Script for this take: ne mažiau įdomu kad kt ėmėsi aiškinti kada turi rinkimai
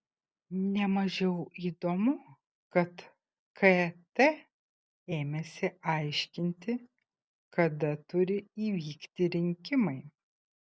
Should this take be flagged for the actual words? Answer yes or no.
yes